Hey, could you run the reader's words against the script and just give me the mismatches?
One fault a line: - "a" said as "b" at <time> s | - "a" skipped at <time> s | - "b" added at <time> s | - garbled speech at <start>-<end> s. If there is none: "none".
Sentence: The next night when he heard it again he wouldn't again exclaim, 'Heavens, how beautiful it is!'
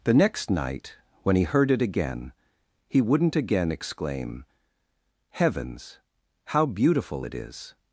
none